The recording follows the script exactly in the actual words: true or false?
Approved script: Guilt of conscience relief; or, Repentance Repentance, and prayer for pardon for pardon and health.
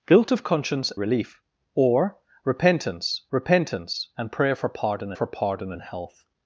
true